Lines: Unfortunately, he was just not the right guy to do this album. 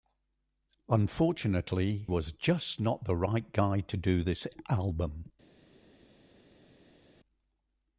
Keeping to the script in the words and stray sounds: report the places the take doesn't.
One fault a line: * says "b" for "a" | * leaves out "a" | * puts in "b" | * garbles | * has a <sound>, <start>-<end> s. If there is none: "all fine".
* leaves out "he"